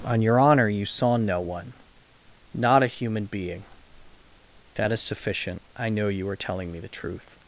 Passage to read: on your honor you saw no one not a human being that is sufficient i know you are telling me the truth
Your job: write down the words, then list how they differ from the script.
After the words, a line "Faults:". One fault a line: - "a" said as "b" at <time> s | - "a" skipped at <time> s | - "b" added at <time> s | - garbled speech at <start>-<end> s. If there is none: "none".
on your honor you saw no one not a human being that is sufficient i know you are telling me the truth
Faults:
none